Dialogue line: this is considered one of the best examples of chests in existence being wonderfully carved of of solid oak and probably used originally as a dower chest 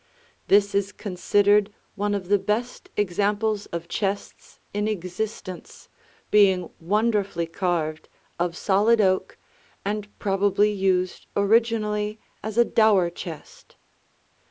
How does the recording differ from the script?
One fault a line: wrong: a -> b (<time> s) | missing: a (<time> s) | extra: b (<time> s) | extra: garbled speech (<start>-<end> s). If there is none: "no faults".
missing: of (8.6 s)